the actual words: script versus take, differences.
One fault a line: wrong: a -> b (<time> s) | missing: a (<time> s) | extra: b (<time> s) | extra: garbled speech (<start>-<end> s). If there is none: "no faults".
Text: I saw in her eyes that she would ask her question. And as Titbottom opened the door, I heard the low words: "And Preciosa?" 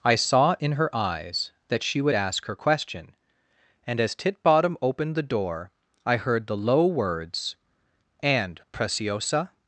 no faults